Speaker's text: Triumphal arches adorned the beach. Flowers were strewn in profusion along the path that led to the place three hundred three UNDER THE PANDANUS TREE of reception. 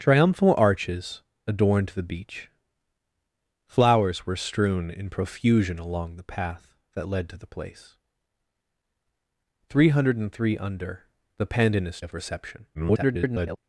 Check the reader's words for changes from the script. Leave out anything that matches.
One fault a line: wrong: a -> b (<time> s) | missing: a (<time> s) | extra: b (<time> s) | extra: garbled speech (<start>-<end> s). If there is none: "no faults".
missing: TREE (12.0 s)
extra: garbled speech (12.7-13.6 s)